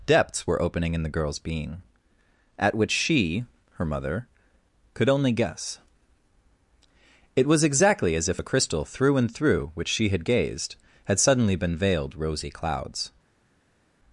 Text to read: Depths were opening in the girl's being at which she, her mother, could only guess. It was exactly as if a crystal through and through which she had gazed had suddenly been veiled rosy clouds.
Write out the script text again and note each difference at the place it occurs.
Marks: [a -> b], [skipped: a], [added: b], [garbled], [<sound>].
Depths were opening in the girl's being at which she, her mother, could only guess. It was exactly as if a crystal through and through which she had gazed had suddenly been veiled rosy clouds.